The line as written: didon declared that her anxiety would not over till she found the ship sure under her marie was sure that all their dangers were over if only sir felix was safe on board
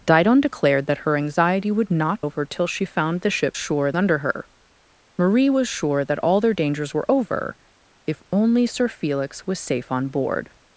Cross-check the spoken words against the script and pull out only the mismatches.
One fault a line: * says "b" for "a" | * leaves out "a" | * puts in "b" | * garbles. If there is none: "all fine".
all fine